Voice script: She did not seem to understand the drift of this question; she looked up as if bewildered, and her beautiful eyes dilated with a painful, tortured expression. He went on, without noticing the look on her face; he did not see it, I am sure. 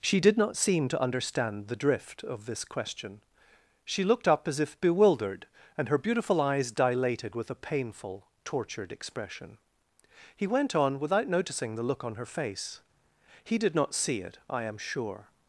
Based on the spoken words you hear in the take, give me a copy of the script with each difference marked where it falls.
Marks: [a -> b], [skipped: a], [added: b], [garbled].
She did not seem to understand the drift of this question; she looked up as if bewildered, and her beautiful eyes dilated with a painful, tortured expression. He went on, without noticing the look on her face; he did not see it, I am sure.